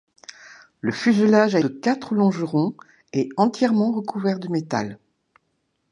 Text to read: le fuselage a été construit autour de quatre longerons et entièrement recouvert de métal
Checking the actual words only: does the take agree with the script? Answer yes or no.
no